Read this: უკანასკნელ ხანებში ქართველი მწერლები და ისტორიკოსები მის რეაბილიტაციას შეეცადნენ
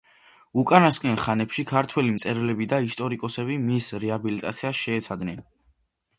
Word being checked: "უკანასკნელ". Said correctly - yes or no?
yes